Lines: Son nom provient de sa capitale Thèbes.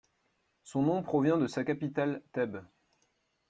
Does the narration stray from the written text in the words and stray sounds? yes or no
no